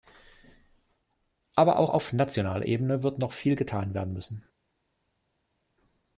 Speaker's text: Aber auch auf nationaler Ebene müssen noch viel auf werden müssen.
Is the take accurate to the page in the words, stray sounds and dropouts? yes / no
no